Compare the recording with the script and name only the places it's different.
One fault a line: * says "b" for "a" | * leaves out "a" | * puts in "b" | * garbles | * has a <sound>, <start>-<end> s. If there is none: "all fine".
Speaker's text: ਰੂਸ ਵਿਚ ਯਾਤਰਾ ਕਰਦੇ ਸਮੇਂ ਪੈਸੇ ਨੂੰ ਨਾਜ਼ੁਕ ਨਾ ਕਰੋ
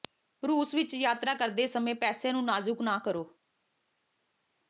all fine